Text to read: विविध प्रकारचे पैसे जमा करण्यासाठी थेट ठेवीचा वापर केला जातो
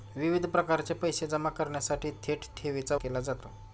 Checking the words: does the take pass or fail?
fail